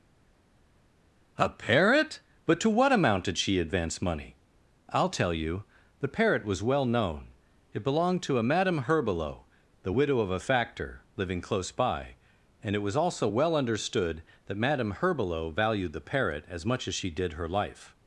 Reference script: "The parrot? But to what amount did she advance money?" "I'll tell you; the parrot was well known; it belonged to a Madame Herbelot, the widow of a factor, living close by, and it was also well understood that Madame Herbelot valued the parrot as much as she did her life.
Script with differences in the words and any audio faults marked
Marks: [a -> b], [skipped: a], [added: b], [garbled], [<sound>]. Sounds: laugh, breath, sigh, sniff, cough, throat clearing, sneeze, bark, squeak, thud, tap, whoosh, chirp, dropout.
["The -> A] parrot? But to what amount did she advance money?" "I'll tell you; the parrot was well known; it belonged to a Madame Herbelot, the widow of a factor, living close by, and it was also well understood that Madame Herbelot valued the parrot as much as she did her life.